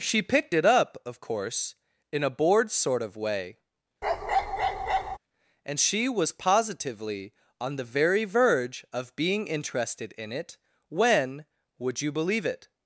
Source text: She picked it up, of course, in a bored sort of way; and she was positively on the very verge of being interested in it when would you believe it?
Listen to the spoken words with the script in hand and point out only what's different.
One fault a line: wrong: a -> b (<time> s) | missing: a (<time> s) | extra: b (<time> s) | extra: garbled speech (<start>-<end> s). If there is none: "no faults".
no faults